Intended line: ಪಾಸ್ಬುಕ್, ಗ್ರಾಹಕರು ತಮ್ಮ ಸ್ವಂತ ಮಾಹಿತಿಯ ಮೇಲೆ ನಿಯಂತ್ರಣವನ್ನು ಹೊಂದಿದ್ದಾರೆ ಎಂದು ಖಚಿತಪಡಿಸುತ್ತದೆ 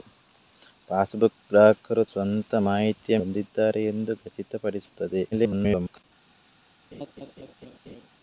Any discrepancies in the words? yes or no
yes